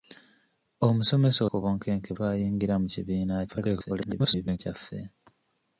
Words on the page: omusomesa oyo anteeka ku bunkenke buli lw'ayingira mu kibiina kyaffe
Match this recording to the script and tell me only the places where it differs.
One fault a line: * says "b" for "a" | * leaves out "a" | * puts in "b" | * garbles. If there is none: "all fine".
* leaves out "oyo anteeka"
* leaves out "buli"
* garbles